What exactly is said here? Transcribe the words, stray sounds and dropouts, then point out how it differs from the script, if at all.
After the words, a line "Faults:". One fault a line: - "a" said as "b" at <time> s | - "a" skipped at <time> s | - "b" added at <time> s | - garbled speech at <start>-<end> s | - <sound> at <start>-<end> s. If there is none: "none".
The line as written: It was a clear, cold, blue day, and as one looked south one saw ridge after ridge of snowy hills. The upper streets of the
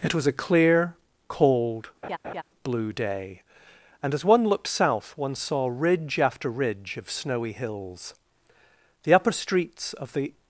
It was a clear, cold, blue day, and as one looked south one saw ridge after ridge of snowy hills. The upper streets of the
Faults:
- laugh at 2.0-2.4 s